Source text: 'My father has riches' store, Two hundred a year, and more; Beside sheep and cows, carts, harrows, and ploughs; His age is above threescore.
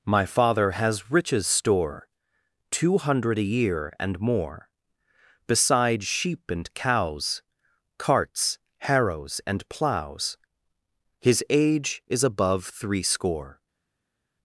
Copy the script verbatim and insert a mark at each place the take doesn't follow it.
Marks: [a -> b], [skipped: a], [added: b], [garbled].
'My father has riches' store, Two hundred a year, and more; Beside sheep and cows, carts, harrows, and ploughs; His age is above threescore.